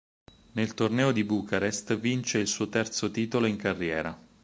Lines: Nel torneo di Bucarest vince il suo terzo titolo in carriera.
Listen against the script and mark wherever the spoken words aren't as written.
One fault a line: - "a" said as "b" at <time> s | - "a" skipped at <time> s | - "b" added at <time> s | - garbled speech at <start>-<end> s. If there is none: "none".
none